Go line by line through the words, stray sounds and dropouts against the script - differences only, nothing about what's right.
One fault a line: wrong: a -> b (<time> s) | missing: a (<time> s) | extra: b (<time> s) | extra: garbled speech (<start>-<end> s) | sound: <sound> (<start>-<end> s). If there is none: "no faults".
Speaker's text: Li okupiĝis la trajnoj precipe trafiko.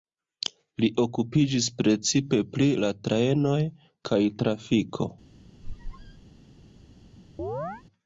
extra: precipe pri (1.8 s)
wrong: precipe -> kaj (4.1 s)
sound: squeak (5.6-6.3 s)
sound: chirp (7.4-7.8 s)